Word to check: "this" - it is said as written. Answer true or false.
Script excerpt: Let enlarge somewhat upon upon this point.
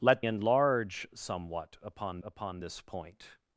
true